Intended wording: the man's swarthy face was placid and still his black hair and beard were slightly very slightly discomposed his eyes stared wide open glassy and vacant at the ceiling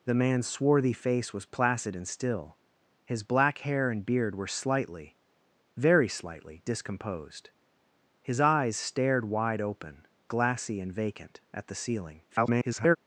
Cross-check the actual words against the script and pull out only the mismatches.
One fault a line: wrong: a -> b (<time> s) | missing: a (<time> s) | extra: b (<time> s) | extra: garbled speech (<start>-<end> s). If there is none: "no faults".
extra: garbled speech (12.3-13.0 s)